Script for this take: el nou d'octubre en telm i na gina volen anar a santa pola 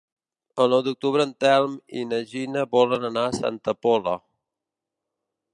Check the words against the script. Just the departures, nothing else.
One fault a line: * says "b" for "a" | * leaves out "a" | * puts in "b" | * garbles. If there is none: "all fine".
all fine